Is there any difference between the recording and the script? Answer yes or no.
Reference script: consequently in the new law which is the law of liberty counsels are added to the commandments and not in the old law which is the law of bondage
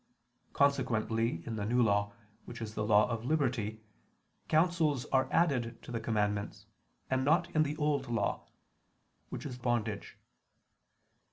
yes